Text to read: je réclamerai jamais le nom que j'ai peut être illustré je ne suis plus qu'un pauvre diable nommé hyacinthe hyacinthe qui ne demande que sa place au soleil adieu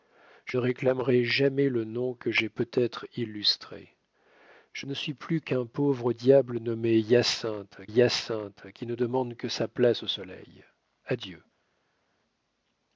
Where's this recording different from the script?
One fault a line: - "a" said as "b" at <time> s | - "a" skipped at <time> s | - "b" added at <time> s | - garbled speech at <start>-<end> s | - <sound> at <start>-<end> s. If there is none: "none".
none